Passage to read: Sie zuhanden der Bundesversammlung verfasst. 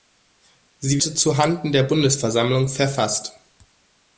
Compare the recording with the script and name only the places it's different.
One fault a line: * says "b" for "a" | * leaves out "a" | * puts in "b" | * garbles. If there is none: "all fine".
all fine